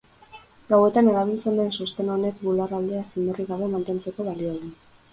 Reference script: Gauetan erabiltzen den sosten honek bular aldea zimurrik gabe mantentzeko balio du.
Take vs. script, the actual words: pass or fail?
pass